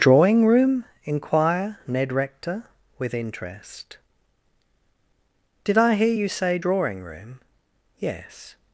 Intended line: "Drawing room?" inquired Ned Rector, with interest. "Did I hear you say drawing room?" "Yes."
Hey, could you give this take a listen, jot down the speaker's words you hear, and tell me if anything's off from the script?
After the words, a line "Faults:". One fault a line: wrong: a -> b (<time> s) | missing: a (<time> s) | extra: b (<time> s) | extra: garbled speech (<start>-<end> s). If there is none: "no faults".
"Drawing room?" inquire Ned Rector, with interest. "Did I hear you say drawing room?" "Yes."
Faults:
wrong: inquired -> inquire (1.0 s)